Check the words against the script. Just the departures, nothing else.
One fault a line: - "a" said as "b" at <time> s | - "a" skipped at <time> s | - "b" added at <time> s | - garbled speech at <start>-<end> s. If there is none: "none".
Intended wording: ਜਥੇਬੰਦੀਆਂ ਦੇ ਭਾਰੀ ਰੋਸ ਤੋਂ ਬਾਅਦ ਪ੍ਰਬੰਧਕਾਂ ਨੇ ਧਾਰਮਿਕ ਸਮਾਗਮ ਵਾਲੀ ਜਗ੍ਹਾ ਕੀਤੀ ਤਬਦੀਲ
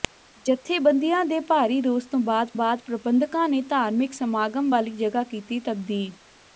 - "ਬਾਅਦ" added at 2.5 s